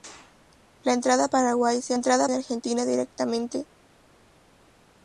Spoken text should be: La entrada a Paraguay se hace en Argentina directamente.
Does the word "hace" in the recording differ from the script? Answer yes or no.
yes